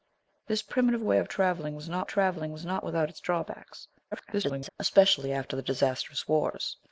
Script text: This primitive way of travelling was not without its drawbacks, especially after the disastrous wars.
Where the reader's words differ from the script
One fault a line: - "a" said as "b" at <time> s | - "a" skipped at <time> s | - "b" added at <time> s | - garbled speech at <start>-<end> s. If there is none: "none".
- "travelling was not" added at 2.1 s
- garbled speech at 4.1-4.7 s